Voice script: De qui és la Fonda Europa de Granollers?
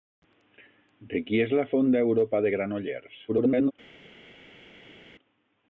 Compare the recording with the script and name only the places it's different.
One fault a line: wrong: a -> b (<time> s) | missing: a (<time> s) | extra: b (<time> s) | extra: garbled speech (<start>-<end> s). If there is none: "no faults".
extra: garbled speech (3.3-3.7 s)